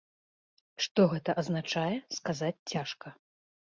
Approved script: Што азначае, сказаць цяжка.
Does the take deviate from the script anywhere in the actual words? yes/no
yes